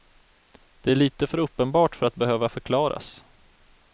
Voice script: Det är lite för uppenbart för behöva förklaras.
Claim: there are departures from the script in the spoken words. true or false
true